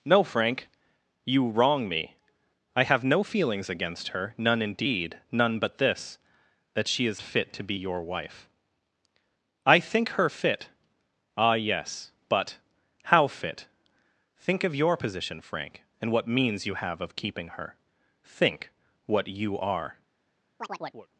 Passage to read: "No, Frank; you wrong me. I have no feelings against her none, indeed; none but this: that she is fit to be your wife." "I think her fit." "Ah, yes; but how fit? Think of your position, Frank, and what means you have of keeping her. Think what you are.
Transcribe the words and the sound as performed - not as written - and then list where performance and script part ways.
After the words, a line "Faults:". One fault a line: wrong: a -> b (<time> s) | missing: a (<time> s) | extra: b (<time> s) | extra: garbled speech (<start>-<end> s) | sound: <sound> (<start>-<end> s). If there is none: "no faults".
"No, Frank; you wrong me. I have no feelings against her none, indeed; none but this: that she is fit to be your wife." "I think her fit." "Ah, yes; but how fit? Think of your position, Frank, and what means you have of keeping her. Think what you are.
Faults:
sound: chirp (20.6-21.1 s)